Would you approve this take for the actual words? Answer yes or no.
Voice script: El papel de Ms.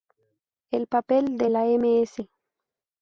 no